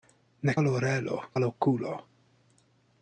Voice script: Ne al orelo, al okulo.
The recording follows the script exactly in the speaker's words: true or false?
true